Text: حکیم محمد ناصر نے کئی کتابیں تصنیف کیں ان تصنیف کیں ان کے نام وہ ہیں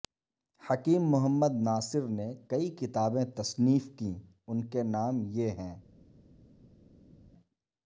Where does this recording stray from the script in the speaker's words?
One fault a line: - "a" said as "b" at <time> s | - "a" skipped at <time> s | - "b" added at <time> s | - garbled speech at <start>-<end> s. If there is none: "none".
- "تصنیف کیں ان" skipped at 4.6 s
- "وہ" said as "یہ" at 5.3 s